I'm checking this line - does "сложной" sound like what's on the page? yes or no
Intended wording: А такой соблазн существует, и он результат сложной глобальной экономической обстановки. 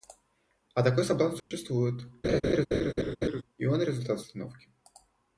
no